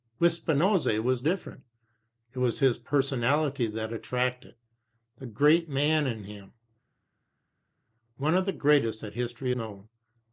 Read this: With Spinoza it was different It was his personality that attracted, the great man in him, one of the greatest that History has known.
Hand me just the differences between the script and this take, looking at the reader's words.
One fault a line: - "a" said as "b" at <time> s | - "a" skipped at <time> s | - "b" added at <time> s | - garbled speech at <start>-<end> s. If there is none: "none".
- "has" skipped at 9.5 s